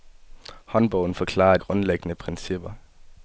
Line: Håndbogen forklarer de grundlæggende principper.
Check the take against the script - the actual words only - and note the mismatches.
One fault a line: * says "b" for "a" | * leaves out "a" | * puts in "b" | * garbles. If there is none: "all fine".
* leaves out "de"